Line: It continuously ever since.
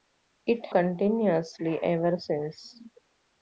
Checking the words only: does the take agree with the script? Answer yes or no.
yes